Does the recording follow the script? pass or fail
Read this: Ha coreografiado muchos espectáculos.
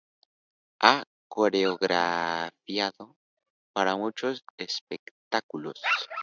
fail